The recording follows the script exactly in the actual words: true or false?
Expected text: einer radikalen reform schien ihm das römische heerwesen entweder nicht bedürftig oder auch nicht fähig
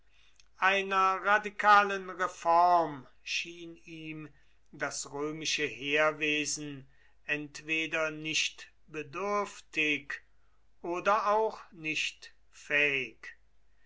true